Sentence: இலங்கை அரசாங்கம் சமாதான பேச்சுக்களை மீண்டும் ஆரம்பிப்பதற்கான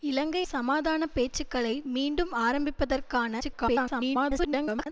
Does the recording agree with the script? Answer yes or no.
no